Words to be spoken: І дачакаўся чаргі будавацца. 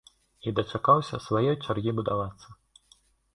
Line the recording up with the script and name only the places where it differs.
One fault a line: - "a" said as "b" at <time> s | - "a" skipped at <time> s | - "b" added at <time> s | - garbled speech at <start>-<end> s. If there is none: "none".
- "сваёй" added at 1.2 s